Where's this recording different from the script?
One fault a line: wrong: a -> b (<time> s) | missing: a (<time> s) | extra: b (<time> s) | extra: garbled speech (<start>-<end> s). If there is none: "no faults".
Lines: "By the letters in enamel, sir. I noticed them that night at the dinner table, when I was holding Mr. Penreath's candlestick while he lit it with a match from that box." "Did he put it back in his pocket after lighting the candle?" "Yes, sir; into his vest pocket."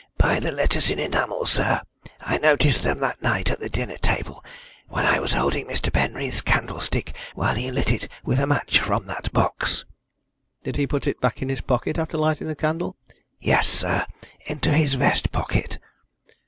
no faults